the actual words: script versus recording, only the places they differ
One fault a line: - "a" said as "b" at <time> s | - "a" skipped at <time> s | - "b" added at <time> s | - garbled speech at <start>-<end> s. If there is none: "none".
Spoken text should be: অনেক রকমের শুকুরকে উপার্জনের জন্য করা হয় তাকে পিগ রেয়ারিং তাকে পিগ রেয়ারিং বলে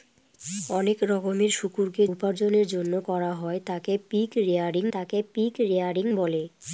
none